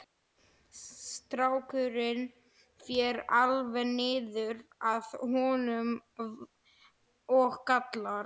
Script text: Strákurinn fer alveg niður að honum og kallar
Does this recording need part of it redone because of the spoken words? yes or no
no